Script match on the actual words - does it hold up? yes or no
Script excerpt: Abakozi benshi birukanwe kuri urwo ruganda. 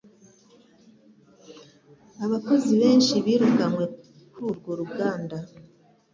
yes